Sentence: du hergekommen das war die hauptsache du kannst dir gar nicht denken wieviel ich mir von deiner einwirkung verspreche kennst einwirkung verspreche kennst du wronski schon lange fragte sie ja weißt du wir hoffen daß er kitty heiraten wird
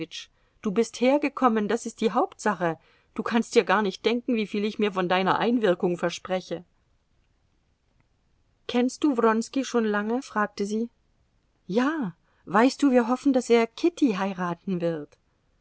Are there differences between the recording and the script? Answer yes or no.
yes